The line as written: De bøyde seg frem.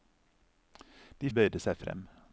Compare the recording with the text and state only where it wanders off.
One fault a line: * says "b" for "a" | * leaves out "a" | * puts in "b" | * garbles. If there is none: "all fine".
all fine